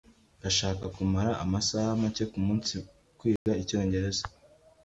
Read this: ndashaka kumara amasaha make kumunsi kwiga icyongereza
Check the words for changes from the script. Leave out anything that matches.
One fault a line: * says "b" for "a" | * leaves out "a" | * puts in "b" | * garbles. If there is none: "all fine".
all fine